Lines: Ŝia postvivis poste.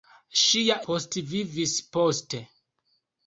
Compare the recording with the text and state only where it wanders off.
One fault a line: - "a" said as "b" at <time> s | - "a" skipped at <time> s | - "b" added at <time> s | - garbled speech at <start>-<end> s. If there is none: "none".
none